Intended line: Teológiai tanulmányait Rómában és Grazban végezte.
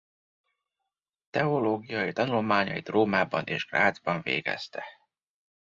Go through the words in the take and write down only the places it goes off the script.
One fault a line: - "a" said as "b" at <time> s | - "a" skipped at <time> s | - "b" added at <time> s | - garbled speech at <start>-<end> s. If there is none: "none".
none